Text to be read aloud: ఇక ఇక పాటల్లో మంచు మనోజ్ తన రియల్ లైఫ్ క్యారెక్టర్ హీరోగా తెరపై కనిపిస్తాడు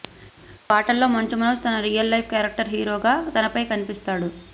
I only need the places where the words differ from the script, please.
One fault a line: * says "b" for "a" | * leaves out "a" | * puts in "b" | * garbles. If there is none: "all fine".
all fine